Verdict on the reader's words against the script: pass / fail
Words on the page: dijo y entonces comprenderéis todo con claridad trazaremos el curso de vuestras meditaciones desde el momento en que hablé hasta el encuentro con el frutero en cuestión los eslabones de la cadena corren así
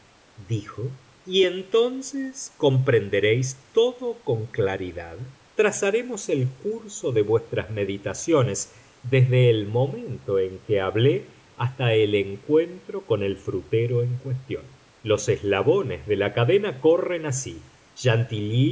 pass